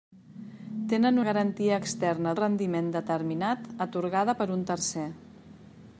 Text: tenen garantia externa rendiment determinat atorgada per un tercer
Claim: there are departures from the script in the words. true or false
false